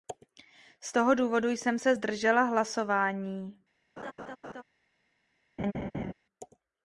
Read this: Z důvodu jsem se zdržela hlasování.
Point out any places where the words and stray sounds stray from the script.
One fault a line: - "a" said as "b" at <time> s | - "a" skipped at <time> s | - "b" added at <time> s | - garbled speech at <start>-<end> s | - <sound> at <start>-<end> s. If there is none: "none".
- "toho" added at 0.9 s
- laugh at 4.0-4.6 s
- laugh at 5.6-6.1 s